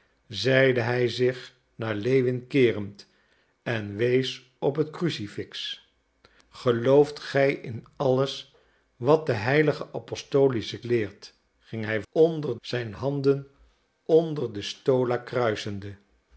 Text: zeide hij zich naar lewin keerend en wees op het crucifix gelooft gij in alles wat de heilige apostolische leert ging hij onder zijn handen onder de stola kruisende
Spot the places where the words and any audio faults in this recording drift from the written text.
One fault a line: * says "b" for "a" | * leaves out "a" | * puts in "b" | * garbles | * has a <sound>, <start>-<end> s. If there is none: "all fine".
all fine